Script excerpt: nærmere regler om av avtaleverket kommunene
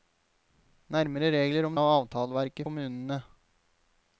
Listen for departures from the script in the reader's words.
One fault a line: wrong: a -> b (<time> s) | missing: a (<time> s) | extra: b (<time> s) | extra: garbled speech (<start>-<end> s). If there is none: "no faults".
no faults